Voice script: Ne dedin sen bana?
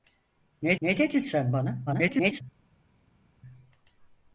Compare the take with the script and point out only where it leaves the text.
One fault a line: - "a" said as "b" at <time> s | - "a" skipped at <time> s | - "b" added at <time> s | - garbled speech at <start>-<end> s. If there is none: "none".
- "ne" added at 0.8 s
- garbled speech at 1.9-2.4 s